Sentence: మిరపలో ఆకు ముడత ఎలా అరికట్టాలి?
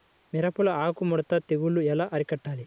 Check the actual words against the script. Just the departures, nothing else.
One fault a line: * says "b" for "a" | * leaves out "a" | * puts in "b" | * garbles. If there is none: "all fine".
* puts in "తెగులు"